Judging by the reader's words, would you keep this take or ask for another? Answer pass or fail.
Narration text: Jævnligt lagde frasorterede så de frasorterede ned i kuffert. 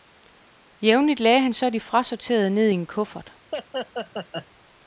fail